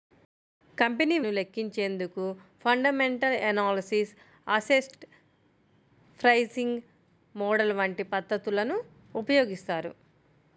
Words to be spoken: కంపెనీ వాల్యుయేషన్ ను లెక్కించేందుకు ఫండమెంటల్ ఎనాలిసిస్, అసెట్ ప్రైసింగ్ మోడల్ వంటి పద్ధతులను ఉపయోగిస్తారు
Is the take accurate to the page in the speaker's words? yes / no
no